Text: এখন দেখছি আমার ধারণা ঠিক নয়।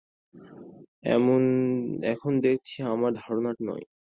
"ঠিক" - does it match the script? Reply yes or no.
no